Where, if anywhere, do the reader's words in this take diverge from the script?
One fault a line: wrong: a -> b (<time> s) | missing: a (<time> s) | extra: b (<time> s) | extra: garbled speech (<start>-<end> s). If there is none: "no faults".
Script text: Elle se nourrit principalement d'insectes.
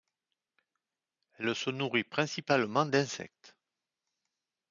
no faults